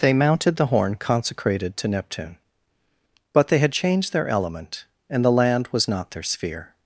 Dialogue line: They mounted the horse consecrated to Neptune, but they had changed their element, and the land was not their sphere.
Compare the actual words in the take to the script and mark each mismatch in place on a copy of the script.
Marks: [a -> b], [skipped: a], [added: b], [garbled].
They mounted the [horse -> horn] consecrated to Neptune, but they had changed their element, and the land was not their sphere.